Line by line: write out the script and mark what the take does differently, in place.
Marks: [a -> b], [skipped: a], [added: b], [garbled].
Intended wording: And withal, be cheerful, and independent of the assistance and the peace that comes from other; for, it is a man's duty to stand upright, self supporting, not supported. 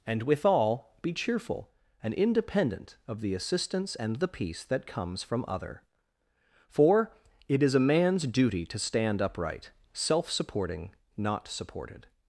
And withal, be cheerful, and independent of the assistance and the peace that comes from other; for, it is a man's duty to stand upright, self supporting, not supported.